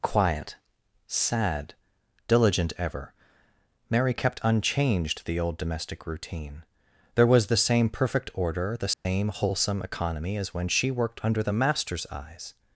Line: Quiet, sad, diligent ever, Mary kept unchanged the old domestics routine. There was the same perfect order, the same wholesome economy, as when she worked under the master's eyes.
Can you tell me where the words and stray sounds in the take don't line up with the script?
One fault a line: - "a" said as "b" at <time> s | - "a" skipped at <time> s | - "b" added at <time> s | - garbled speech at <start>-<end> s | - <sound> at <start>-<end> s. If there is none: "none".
- "domestics" said as "domestic" at 5.6 s
- dropout at 8.9-9.1 s